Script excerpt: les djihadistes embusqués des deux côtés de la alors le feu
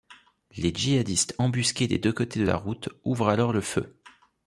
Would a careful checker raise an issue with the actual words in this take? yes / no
yes